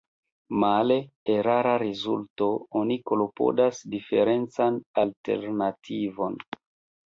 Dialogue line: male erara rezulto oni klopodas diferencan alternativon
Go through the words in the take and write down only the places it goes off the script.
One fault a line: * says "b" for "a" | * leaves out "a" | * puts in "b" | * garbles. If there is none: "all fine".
all fine